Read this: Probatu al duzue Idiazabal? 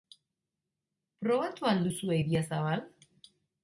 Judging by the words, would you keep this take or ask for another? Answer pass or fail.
pass